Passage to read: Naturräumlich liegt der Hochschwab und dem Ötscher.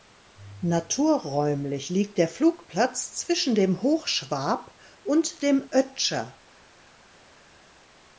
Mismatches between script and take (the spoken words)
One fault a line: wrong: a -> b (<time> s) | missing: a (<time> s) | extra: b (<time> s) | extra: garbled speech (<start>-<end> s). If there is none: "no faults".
extra: Flugplatz zwischen dem (2.3 s)